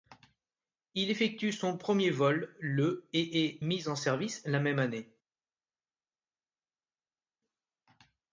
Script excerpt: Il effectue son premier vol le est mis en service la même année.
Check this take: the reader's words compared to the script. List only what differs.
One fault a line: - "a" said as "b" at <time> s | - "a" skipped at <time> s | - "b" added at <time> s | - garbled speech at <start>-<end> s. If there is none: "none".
- "et" added at 3.1 s